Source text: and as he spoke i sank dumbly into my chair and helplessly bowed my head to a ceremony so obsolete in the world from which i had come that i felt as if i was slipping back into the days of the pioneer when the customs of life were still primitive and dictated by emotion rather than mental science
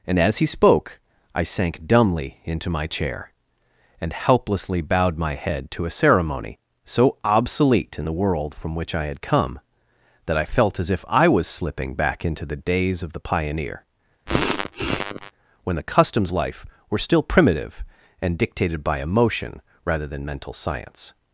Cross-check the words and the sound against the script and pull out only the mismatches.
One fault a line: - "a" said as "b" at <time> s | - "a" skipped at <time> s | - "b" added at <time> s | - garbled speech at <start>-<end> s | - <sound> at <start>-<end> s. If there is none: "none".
- sneeze at 14.3-15.3 s
- "of" skipped at 16.3 s